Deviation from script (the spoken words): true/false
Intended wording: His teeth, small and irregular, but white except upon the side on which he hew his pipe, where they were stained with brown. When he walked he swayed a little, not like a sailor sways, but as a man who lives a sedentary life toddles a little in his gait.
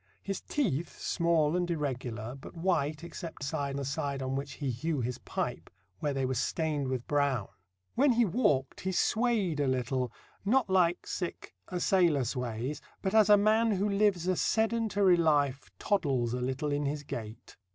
true